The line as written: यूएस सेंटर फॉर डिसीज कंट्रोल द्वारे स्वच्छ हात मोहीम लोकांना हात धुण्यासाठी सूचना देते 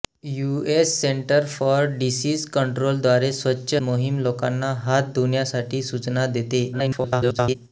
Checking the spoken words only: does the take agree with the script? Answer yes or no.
no